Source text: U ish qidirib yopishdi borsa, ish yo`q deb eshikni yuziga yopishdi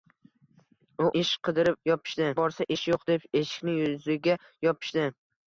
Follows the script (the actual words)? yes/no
yes